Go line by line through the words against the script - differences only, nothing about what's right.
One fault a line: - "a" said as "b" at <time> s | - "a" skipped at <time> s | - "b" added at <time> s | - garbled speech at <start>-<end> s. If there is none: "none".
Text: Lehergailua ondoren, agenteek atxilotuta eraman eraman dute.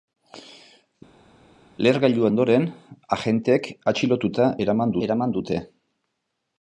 none